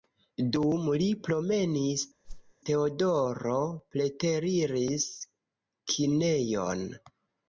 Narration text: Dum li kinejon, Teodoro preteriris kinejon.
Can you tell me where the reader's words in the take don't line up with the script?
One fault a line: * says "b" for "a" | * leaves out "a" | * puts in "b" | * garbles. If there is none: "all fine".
* says "promenis" for "kinejon"